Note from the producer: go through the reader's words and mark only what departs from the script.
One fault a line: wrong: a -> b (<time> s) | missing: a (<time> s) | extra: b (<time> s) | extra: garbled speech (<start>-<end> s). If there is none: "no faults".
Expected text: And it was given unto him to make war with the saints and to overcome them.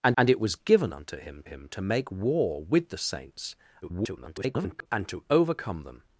extra: and (0.2 s)
extra: him (1.4 s)
extra: garbled speech (3.8-4.9 s)